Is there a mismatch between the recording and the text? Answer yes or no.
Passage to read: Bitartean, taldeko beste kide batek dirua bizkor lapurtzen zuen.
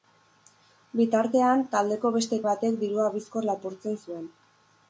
yes